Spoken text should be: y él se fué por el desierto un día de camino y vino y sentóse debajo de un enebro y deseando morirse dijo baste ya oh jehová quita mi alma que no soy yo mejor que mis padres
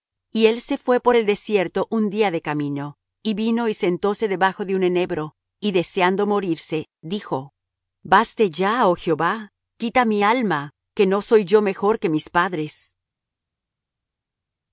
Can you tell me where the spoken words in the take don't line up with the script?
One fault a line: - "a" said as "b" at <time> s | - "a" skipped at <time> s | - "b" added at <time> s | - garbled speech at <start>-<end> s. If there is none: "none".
none